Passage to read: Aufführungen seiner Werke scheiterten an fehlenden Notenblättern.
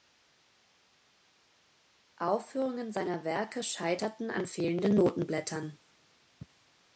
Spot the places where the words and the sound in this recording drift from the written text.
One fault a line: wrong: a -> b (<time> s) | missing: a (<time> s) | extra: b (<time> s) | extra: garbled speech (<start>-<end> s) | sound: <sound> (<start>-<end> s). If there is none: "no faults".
no faults